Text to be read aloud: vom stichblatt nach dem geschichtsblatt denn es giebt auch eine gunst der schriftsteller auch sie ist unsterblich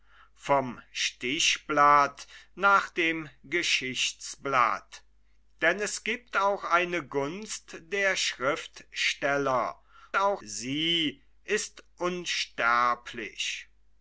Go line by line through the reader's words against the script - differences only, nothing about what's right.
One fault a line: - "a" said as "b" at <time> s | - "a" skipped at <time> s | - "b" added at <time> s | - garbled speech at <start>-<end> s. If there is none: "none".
none